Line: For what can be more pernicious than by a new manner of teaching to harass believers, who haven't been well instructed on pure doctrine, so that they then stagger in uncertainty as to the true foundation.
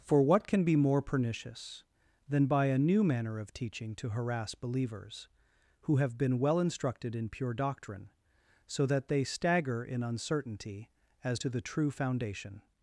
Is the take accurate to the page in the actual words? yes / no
no